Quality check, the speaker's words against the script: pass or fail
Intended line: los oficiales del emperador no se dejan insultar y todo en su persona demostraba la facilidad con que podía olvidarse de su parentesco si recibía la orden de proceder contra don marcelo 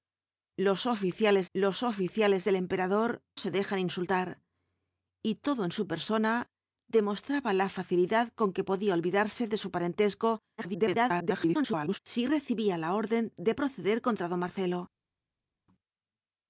fail